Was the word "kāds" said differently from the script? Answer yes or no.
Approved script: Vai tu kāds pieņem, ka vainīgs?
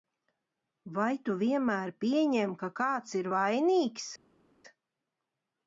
yes